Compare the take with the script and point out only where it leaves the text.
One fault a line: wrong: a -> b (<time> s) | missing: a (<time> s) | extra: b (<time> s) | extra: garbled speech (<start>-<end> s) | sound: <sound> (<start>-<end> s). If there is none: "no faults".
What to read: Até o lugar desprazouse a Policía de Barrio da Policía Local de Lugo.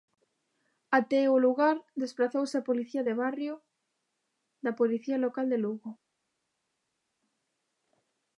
no faults